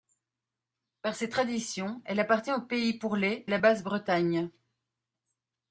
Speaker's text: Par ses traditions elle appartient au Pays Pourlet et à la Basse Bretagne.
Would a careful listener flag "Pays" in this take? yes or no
no